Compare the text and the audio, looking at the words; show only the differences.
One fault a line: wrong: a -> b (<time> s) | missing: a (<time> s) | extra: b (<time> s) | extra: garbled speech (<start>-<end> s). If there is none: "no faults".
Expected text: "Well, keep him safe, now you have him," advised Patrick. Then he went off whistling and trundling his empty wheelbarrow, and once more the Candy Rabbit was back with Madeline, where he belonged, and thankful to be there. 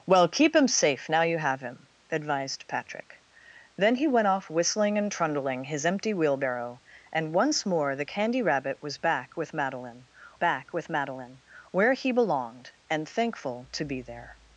extra: back with Madeline (10.4 s)